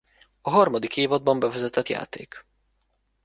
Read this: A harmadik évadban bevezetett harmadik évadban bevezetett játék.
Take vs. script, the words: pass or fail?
fail